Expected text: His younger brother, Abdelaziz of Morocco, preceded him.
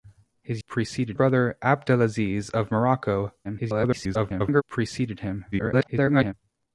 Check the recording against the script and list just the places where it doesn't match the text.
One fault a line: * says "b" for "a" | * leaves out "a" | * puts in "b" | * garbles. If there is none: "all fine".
* says "preceded" for "younger"
* garbles
* garbles